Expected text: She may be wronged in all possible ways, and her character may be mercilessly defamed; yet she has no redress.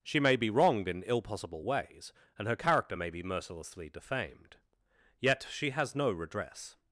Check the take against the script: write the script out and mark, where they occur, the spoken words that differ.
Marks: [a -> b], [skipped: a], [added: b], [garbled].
She may be wronged in [all -> ill] possible ways, and her character may be mercilessly defamed; yet she has no redress.